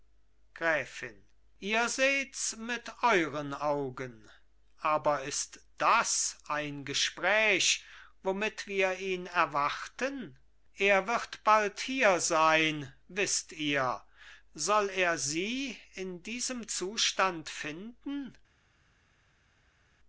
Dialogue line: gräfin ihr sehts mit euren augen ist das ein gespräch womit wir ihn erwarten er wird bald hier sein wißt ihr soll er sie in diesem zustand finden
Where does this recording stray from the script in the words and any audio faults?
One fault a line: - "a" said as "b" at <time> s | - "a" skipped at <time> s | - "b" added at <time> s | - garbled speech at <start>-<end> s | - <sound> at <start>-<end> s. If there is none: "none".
- "aber" added at 4.8 s